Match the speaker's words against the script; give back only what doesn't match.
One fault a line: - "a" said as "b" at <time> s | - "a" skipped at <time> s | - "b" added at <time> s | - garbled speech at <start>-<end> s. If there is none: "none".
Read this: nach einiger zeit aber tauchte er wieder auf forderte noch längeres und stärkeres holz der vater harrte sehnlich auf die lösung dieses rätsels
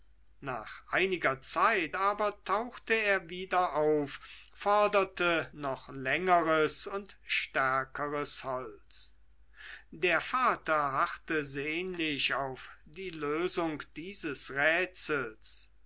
none